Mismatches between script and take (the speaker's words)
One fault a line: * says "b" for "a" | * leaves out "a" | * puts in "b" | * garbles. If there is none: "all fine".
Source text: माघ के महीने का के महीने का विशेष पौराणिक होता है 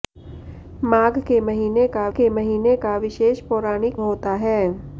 all fine